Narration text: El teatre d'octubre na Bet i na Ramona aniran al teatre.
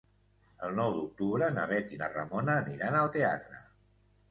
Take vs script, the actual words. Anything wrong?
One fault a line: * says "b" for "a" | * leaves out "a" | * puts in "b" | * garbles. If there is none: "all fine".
* says "nou" for "teatre"